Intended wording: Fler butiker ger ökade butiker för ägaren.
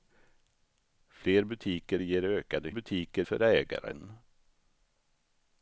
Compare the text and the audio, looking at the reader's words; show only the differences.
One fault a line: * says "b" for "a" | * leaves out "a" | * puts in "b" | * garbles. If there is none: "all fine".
all fine